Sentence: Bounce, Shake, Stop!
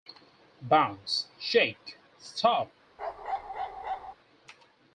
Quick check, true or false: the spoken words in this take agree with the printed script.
true